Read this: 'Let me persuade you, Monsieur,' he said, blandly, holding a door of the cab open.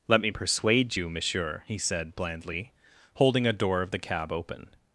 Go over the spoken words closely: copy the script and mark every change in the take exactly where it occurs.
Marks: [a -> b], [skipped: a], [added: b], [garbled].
'Let me persuade you, Monsieur,' he said, blandly, holding a door of the cab open.